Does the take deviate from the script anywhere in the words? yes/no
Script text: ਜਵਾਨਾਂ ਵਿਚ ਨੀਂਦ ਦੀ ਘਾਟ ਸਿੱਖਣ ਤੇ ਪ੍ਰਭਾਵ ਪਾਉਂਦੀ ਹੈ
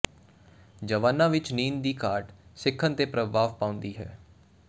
no